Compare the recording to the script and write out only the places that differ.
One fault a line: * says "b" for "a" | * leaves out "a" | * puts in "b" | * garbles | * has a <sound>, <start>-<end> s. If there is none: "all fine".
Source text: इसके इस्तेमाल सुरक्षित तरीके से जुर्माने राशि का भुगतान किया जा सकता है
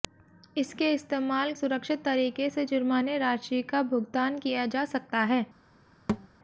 * has a thud, 6.1-6.3 s